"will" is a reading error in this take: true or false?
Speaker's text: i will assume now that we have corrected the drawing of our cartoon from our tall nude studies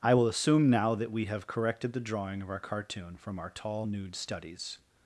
false